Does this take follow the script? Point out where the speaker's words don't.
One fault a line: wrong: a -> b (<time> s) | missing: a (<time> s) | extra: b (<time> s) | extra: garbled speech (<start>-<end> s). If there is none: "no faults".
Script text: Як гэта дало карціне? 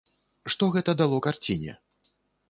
wrong: Як -> Што (0.5 s)